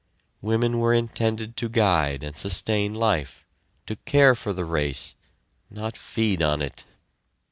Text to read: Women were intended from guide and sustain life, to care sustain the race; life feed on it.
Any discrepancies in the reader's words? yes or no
yes